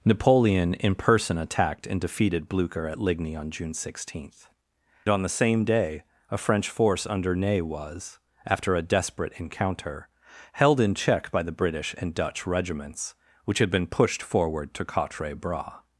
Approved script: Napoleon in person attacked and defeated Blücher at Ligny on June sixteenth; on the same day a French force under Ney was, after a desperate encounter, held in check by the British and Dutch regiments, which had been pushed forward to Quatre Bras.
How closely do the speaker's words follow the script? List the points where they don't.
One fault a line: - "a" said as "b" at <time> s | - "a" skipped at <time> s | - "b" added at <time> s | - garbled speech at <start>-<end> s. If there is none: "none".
none